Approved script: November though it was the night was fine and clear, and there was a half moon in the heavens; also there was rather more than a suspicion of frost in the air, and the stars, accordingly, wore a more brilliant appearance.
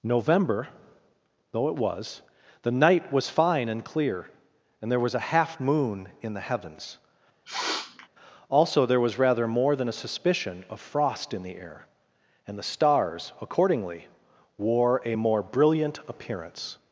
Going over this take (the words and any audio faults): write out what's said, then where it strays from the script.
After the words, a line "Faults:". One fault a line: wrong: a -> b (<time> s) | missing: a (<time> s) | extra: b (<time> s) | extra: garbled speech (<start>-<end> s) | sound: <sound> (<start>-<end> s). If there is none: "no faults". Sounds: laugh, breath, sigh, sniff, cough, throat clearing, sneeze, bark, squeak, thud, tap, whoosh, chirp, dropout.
November though it was the night was fine and clear, and there was a half moon in the heavens; also there was rather more than a suspicion of frost in the air, and the stars, accordingly, wore a more brilliant appearance.
Faults:
sound: sniff (7.5-8.1 s)